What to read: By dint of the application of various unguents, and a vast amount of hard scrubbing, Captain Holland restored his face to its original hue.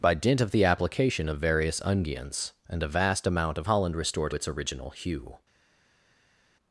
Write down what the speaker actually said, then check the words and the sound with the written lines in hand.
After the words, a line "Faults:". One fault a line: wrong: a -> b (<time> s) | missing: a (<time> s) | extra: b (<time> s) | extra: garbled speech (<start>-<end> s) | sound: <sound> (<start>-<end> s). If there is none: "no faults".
By dint of the application of various unguents, and a vast amount of Holland restored its original hue.
Faults:
missing: hard scrubbing Captain (3.7 s)
missing: his face to (4.3 s)